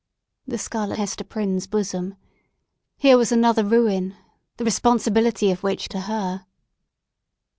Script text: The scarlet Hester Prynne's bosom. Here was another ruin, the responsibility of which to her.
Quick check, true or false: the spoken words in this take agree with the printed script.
true